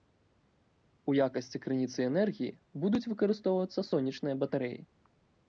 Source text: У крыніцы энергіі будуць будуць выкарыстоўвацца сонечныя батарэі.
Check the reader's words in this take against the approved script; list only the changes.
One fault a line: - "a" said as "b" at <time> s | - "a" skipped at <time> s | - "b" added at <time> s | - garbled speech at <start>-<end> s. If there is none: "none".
- "якасці" added at 1.2 s
- "будуць" skipped at 3.0 s